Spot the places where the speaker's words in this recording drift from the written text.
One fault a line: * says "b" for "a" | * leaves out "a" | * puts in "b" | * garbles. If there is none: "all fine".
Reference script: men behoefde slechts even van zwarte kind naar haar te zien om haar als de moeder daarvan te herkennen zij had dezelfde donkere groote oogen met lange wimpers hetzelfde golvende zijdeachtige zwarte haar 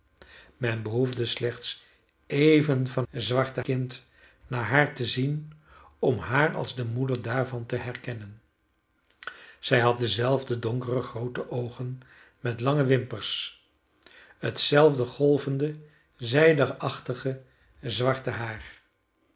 all fine